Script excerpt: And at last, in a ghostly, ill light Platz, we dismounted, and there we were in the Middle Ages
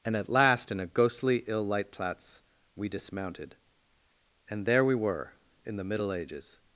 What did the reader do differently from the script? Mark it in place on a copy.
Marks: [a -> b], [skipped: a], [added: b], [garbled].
And at last, in a ghostly, ill light Platz, we dismounted, and there we were in the Middle Ages